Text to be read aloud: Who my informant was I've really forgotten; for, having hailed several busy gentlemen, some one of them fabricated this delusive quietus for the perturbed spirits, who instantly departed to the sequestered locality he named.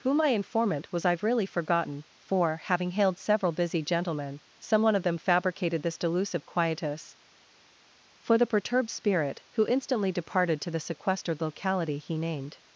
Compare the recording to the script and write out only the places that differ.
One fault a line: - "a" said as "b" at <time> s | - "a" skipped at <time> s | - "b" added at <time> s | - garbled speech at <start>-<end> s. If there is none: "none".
- "spirits" said as "spirit" at 8.9 s